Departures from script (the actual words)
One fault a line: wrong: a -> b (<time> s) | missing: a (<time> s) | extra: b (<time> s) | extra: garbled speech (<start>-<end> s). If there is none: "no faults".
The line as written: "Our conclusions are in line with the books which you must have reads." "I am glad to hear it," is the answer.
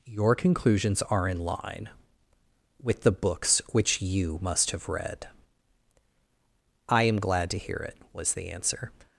wrong: Our -> Your (0.1 s)
wrong: reads -> read (4.9 s)
wrong: is -> was (8.1 s)